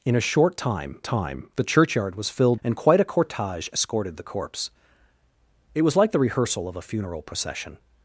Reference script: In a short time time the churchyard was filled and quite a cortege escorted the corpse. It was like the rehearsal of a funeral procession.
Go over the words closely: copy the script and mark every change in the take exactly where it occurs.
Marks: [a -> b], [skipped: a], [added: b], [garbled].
In a short time time the churchyard was filled and quite a cortege escorted the corpse. It was like the rehearsal of a funeral procession.